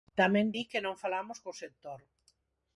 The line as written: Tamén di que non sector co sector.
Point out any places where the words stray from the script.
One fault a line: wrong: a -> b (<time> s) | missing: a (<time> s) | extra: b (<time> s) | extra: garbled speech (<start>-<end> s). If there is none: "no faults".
wrong: sector -> falamos (1.0 s)